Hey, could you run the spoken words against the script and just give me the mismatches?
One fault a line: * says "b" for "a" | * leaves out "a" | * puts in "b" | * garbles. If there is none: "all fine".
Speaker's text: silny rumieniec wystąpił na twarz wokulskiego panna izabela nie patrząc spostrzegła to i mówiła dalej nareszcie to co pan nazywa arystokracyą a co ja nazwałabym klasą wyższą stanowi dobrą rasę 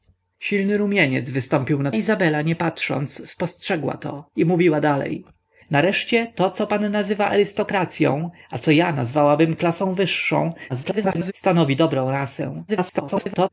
* leaves out "twarz wokulskiego panna"
* garbles
* garbles